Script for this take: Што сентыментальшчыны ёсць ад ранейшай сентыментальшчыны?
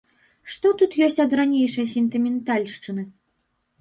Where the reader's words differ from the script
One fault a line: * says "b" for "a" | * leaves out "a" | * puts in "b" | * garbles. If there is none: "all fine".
* says "тут" for "сентыментальшчыны"